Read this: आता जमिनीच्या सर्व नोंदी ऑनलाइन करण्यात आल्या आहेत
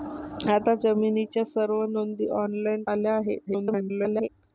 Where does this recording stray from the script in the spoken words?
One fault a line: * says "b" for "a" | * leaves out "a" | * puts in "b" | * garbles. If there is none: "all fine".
* leaves out "करण्यात"
* garbles